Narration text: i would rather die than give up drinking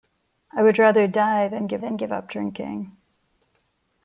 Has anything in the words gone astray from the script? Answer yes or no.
yes